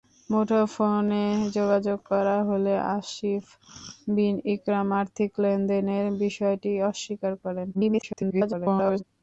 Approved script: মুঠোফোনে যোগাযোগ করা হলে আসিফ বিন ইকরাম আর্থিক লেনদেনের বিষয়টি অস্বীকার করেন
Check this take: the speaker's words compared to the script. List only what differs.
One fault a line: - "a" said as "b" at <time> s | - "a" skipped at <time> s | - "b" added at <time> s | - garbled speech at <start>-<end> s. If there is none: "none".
- garbled speech at 7.7-9.0 s